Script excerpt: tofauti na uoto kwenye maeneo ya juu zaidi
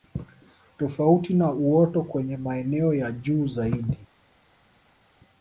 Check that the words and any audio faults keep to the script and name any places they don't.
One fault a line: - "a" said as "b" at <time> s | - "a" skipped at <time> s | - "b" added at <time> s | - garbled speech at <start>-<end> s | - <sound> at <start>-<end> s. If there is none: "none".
none